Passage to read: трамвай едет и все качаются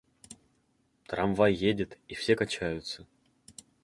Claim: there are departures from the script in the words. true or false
false